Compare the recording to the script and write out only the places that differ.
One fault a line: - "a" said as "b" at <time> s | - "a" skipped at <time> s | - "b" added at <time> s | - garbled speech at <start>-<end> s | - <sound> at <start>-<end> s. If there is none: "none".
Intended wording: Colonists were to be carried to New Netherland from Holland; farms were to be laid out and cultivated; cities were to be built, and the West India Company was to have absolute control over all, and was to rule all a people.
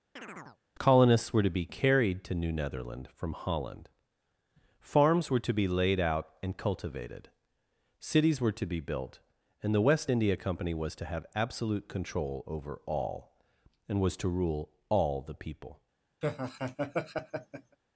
- chirp at 0.2-0.6 s
- "a" said as "the" at 15.2 s
- laugh at 16.2-17.8 s